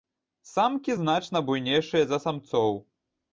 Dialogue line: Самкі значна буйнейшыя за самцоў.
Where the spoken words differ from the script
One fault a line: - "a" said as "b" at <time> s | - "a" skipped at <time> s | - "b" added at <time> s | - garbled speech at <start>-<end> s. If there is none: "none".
none